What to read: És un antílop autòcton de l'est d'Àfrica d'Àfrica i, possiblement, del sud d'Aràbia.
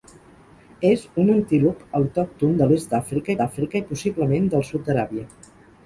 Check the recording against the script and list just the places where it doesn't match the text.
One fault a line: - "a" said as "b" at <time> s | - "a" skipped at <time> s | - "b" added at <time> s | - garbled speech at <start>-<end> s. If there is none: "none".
none